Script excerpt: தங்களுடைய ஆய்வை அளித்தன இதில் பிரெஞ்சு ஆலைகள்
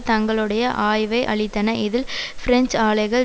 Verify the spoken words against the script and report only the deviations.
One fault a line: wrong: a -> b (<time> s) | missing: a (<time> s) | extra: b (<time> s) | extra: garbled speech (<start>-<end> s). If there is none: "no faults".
no faults